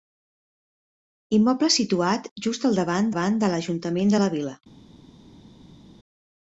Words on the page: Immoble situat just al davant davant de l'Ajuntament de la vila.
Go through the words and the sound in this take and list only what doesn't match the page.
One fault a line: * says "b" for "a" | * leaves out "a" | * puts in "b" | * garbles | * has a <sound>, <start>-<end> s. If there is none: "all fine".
all fine